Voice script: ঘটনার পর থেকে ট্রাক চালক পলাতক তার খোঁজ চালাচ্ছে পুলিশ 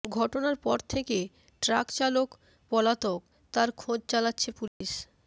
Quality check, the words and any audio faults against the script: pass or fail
fail